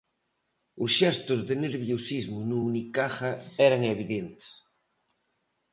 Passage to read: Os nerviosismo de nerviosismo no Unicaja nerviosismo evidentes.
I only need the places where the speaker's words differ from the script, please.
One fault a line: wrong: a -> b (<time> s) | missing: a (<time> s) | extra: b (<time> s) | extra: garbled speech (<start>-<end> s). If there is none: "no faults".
wrong: nerviosismo -> xestos (1.0 s)
wrong: nerviosismo -> eran (3.7 s)